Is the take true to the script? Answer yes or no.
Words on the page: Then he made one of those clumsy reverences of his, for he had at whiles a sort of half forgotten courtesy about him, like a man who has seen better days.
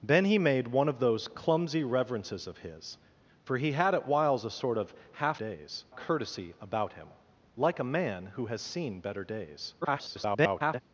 no